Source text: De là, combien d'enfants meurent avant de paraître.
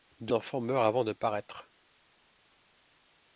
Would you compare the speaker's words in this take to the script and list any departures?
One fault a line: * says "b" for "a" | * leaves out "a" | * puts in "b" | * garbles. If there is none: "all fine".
* leaves out "là combien"